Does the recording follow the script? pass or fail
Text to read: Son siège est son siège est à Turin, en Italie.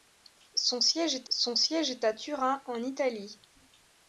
pass